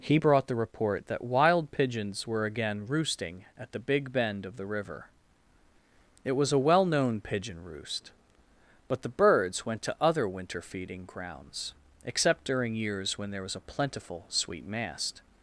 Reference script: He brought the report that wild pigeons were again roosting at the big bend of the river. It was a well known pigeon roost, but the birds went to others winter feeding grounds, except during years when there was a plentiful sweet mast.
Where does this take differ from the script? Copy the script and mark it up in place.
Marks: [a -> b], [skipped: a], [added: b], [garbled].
He brought the report that wild pigeons were again roosting at the big bend of the river. It was a well known pigeon roost, but the birds went to [others -> other] winter feeding grounds, except during years when there was a plentiful sweet mast.